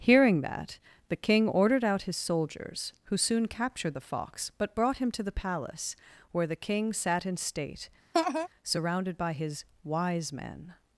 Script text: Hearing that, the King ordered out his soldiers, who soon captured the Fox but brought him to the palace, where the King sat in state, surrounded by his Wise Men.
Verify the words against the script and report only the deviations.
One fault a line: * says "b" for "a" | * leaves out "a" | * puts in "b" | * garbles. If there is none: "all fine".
all fine